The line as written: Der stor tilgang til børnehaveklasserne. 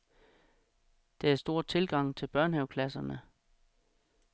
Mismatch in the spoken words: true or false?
false